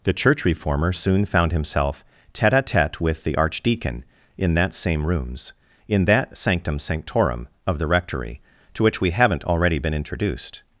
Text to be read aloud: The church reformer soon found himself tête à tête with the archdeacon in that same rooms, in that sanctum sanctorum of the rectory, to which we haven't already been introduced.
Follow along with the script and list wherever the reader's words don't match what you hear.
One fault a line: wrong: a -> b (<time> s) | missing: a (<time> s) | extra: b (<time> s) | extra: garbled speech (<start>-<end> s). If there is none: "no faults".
no faults